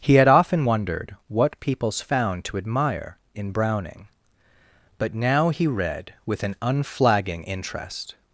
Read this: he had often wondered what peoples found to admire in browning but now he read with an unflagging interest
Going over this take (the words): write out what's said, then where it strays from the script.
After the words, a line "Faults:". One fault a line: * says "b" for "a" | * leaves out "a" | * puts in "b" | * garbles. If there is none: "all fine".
he had often wondered what peoples found to admire in browning but now he read with an unflagging interest
Faults:
all fine